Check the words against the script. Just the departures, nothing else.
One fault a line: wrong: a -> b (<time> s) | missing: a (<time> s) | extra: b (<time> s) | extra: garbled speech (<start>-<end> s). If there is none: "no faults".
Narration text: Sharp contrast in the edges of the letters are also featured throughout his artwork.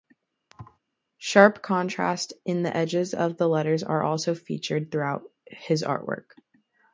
no faults